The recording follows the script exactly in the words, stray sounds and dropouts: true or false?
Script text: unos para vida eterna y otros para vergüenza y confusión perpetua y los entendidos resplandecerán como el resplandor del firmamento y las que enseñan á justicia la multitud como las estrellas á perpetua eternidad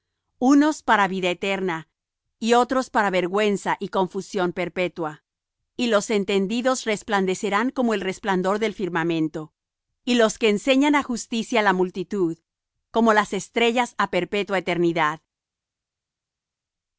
false